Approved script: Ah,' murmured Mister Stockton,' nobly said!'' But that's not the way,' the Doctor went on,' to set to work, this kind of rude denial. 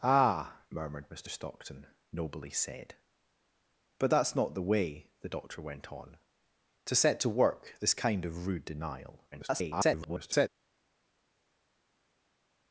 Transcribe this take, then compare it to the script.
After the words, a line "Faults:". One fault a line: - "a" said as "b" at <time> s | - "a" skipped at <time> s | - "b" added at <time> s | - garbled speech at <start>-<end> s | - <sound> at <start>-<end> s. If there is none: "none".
Ah,' murmured Mister Stockton,' nobly said!'' But that's not the way,' the Doctor went on,' to set to work, this kind of rude denial. [garbled]
Faults:
- garbled speech at 9.3-10.5 s